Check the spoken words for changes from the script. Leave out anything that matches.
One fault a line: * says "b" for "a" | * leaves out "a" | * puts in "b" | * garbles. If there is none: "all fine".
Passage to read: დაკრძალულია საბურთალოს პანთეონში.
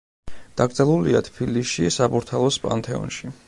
* puts in "თბილისში"